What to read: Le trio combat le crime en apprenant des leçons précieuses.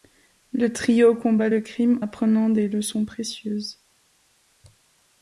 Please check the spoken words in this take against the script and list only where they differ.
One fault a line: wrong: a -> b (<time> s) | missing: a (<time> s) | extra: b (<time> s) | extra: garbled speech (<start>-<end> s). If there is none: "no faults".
missing: en (2.0 s)